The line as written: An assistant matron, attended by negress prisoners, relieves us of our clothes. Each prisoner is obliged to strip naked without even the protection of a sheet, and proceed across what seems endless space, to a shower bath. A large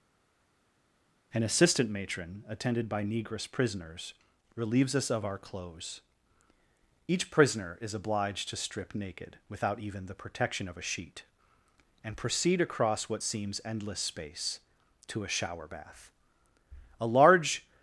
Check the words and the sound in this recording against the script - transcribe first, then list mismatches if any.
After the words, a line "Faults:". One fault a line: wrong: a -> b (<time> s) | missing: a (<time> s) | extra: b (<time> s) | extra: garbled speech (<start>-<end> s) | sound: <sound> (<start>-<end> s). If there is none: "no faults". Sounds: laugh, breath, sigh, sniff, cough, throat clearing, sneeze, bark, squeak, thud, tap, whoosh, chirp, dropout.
An assistant matron, attended by negress prisoners, relieves us of our clothes. Each prisoner is obliged to strip naked without even the protection of a sheet, and proceed across what seems endless space, to a shower bath. A large
Faults:
no faults